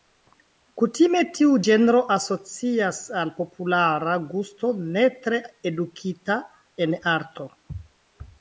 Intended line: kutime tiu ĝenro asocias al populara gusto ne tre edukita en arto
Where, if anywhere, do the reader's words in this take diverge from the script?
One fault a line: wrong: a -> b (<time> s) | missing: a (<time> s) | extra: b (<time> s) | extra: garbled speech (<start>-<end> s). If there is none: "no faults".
no faults